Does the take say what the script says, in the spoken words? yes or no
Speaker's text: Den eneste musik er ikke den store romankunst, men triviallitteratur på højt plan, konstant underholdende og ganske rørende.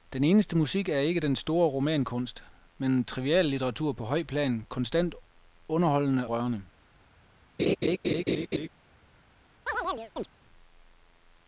no